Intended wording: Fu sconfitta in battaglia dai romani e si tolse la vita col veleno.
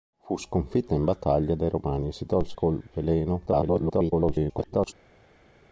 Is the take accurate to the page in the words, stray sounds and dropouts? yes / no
no